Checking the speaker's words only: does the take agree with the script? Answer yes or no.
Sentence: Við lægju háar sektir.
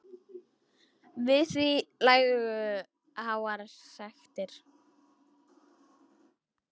no